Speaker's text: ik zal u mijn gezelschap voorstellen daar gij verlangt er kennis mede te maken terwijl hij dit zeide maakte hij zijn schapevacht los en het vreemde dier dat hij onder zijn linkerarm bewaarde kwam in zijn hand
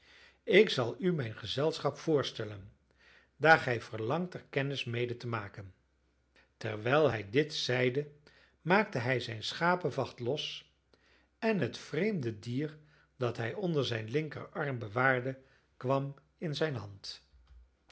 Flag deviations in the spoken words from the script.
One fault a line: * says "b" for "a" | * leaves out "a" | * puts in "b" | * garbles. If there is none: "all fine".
all fine